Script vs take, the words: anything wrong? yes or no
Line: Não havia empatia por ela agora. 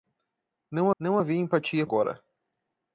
yes